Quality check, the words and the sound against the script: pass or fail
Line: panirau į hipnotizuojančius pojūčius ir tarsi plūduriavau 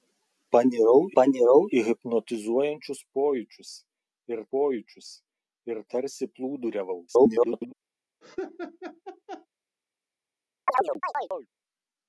fail